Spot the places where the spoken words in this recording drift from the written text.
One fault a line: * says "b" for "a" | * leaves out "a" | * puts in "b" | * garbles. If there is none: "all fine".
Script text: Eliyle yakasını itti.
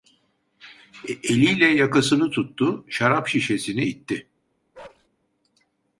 * puts in "tuttu şarap şişesini"